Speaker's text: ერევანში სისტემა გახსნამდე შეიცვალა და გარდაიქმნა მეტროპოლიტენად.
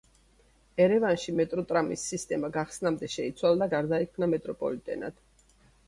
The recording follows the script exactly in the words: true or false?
false